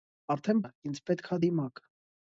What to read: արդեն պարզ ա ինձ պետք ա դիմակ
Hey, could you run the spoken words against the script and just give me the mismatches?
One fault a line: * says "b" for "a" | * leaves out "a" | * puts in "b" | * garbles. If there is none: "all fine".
* leaves out "պարզ"